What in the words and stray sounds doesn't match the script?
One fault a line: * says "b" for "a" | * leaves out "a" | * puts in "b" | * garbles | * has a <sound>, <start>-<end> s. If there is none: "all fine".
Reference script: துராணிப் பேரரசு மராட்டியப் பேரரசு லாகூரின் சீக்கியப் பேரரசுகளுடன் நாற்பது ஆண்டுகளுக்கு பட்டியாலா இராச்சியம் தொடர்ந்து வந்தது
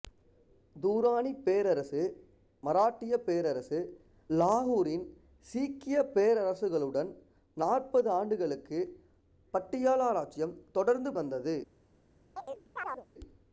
* has a chirp, 12.4-13.1 s